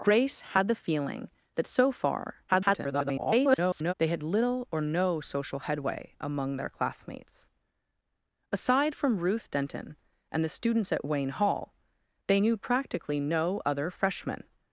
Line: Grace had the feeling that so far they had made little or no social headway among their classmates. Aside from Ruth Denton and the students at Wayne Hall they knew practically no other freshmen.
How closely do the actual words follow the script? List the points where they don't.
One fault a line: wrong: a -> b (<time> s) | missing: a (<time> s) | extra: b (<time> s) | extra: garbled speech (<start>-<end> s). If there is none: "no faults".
extra: garbled speech (2.5-3.9 s)
missing: made (4.2 s)